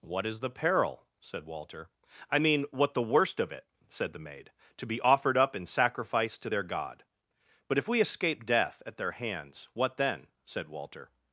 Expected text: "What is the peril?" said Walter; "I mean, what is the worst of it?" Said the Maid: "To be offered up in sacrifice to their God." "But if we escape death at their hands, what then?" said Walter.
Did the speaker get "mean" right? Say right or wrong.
right